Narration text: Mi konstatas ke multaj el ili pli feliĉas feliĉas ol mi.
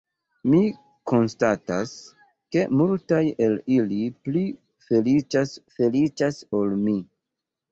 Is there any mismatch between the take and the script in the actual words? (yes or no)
no